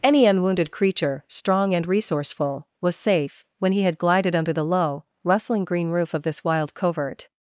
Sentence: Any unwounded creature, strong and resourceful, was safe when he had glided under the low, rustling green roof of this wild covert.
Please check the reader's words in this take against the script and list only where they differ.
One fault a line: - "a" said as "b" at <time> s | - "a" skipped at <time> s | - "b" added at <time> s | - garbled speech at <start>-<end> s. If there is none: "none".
none